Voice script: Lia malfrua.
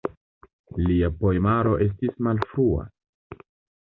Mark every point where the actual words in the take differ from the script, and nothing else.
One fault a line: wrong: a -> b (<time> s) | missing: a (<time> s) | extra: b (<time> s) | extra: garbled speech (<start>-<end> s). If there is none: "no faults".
extra: poemaro estis (1.2 s)